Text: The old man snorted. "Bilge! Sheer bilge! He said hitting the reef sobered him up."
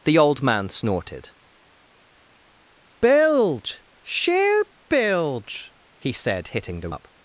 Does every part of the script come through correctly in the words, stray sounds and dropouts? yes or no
no